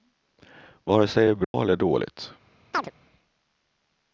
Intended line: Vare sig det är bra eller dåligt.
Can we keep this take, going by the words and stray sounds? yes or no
no